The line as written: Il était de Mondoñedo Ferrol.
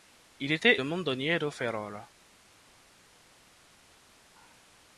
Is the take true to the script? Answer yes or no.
yes